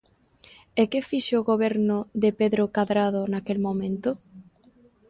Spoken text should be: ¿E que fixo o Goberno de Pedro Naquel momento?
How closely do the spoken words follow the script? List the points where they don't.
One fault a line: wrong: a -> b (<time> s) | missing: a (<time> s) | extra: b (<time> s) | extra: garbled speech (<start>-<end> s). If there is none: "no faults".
extra: Cadrado (2.8 s)